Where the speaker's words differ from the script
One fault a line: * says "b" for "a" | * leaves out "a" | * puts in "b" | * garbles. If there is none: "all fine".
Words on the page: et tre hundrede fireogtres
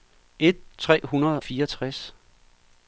all fine